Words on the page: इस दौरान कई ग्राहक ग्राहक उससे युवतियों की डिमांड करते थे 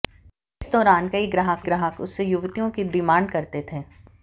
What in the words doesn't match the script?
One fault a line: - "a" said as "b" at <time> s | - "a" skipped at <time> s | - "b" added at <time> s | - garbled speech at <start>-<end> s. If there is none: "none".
none